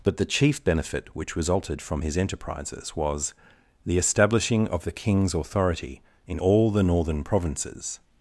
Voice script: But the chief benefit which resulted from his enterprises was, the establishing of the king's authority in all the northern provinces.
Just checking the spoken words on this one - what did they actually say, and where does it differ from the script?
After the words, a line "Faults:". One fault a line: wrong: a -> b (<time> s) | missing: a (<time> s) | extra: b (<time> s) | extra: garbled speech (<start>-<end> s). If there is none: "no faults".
But the chief benefit which resulted from his enterprises was, the establishing of the king's authority in all the northern provinces.
Faults:
no faults